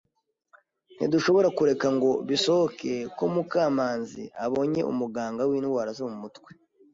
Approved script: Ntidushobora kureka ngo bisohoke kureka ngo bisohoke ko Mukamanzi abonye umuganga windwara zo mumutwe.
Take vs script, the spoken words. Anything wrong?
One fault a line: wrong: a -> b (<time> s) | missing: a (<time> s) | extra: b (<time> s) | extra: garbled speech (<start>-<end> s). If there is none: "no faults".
missing: kureka ngo bisohoke (2.9 s)